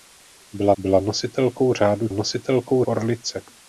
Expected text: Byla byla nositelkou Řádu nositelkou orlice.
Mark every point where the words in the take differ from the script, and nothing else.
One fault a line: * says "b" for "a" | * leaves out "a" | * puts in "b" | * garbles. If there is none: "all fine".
all fine